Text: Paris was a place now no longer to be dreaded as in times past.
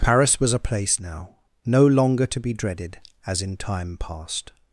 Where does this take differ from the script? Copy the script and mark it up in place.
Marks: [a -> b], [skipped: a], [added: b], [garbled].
Paris was a place now no longer to be dreaded as in [times -> time] past.